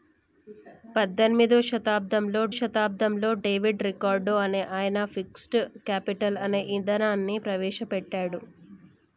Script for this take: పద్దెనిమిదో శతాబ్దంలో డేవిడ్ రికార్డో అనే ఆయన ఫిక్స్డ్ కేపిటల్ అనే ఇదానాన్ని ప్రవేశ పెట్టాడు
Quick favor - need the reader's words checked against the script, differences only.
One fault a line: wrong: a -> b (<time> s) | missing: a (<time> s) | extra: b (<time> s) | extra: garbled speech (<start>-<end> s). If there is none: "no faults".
extra: శతాబ్దంలో (2.6 s)